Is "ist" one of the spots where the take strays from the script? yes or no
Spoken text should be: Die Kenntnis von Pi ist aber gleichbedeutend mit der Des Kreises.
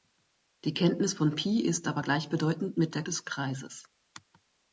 no